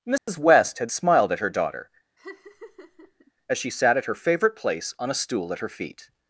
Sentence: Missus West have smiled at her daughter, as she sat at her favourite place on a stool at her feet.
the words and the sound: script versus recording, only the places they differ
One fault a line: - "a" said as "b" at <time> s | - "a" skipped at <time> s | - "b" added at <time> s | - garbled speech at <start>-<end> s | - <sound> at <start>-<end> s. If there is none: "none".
- dropout at 0.2-0.3 s
- "have" said as "had" at 0.8 s
- laugh at 2.2-3.3 s